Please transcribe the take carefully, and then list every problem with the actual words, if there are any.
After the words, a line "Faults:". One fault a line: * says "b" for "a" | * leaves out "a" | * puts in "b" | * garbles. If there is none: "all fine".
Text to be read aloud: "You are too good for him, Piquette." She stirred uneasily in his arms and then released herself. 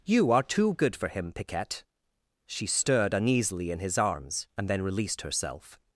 "You are too good for him, Piquette." She stirred uneasily in his arms and then released herself.
Faults:
all fine